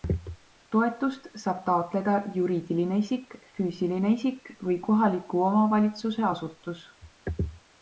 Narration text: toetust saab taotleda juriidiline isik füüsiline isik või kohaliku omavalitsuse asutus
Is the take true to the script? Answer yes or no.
yes